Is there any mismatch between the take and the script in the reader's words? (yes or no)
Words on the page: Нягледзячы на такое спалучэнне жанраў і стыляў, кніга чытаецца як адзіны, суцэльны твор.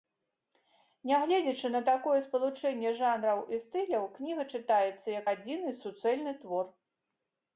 no